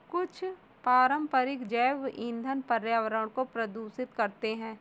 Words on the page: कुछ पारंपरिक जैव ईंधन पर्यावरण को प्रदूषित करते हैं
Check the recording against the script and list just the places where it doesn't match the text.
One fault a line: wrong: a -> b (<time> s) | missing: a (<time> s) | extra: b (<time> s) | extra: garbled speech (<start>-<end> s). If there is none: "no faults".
no faults